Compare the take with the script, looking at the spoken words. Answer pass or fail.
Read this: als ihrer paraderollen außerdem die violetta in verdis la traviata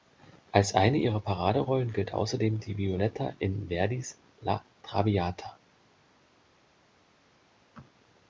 fail